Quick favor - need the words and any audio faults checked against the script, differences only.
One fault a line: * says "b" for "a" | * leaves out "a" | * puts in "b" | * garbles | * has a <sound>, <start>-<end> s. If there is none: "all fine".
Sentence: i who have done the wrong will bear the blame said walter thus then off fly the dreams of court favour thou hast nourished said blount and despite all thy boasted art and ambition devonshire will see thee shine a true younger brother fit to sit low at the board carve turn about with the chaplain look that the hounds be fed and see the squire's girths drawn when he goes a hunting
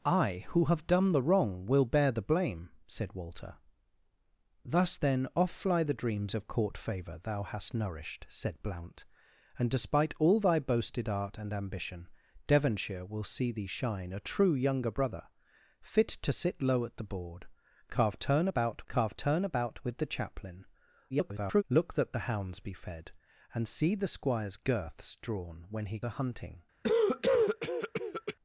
* puts in "carve turn about"
* garbles
* leaves out "goes"
* has a cough, 26.8-28.4 s